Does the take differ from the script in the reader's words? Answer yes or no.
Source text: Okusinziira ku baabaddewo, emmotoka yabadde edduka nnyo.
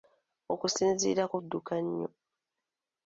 yes